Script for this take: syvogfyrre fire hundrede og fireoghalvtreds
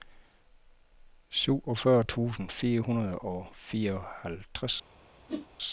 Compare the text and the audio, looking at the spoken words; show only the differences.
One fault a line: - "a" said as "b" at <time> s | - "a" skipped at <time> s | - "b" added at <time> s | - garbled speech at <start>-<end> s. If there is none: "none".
- "tusind" added at 2.0 s